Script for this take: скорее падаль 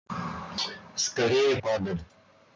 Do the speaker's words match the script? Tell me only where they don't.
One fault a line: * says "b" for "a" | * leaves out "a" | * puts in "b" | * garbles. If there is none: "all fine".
all fine